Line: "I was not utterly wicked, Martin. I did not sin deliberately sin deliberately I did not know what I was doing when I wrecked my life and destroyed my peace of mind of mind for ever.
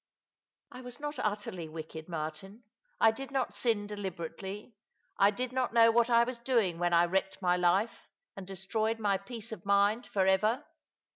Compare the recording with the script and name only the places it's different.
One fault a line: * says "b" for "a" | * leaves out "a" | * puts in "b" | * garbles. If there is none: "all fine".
* leaves out "sin deliberately"
* leaves out "of mind"